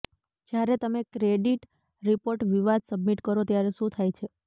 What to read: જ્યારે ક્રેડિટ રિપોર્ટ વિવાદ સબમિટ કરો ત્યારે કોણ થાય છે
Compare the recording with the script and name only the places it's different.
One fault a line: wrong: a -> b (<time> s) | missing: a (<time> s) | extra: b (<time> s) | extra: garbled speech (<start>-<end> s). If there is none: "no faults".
extra: તમે (0.8 s)
wrong: કોણ -> શું (3.8 s)